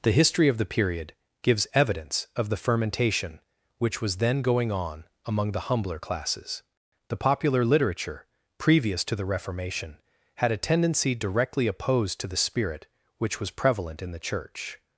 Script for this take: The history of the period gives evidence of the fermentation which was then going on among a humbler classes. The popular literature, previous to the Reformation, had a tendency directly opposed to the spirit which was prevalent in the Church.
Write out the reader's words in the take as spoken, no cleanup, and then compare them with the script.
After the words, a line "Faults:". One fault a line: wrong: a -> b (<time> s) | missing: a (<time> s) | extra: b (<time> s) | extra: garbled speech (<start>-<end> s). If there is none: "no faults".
The history of the period gives evidence of the fermentation which was then going on among the humbler classes. The popular literature, previous to the Reformation, had a tendency directly opposed to the spirit which was prevalent in the Church.
Faults:
wrong: a -> the (5.5 s)